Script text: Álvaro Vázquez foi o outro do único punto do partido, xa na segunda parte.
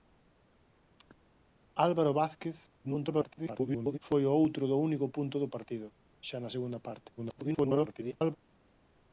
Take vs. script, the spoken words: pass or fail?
fail